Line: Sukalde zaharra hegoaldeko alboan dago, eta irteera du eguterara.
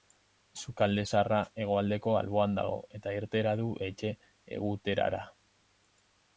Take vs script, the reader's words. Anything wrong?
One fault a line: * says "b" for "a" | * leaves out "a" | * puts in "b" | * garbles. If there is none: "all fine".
* puts in "etxe"